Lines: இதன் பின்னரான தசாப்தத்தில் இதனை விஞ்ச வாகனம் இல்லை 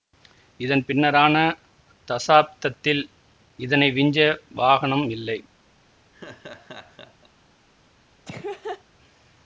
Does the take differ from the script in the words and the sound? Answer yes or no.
yes